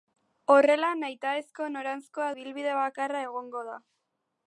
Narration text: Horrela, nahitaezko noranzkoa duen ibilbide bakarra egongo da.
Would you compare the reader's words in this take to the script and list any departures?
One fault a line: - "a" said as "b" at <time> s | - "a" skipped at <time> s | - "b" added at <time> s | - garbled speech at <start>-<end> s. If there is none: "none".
- "duen" skipped at 2.3 s